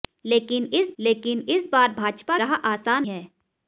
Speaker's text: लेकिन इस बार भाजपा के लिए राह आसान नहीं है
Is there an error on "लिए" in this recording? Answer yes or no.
yes